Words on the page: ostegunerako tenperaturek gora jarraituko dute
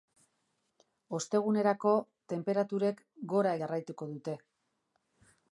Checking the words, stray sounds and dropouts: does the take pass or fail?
pass